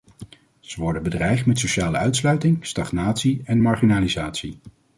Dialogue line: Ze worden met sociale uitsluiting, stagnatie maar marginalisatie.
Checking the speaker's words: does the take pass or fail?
fail